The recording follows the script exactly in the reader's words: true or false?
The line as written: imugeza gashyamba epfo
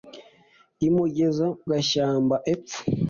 true